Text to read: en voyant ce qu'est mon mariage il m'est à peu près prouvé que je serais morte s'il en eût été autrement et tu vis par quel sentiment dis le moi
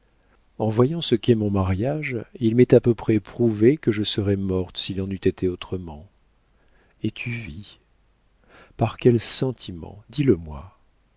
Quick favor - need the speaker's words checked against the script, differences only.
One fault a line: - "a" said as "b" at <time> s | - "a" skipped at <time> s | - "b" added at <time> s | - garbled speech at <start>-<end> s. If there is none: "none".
none